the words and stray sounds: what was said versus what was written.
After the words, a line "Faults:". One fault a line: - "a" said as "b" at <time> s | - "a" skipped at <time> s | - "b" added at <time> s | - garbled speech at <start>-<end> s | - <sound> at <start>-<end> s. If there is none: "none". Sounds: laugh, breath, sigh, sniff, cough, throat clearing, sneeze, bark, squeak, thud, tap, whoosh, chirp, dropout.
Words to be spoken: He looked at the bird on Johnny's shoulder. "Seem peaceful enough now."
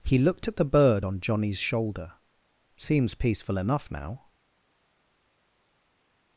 He looked at the bird on Johnny's shoulder. "Seems peaceful enough now."
Faults:
- "Seem" said as "Seems" at 2.8 s